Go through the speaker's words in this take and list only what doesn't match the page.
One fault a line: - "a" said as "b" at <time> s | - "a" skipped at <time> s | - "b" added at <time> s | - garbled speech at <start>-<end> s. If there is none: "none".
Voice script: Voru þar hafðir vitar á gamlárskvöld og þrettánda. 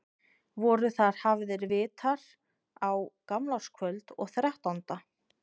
none